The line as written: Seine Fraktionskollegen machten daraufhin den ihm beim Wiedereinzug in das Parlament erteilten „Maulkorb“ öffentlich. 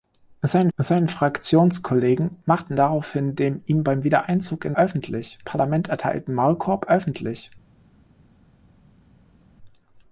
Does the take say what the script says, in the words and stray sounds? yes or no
no